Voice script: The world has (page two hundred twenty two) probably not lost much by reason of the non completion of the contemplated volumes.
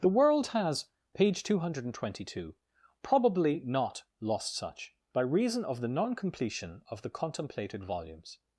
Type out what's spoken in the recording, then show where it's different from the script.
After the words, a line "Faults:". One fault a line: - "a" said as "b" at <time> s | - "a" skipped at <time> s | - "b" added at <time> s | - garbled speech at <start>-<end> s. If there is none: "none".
The world has (page two hundred twenty two) probably not lost such by reason of the non completion of the contemplated volumes.
Faults:
- "much" said as "such" at 4.5 s